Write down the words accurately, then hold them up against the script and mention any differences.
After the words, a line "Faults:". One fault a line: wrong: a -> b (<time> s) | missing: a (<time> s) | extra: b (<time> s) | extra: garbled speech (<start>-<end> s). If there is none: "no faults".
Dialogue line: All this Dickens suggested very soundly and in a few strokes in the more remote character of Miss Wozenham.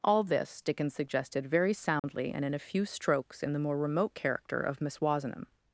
All this Dickens suggested very soundly and in a few strokes in the more remote character of Miss Wozenham.
Faults:
no faults